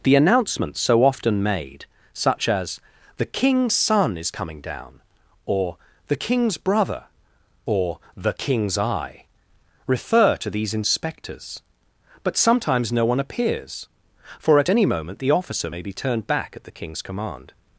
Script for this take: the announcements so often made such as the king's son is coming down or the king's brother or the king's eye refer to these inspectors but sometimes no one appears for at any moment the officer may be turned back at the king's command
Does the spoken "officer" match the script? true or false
true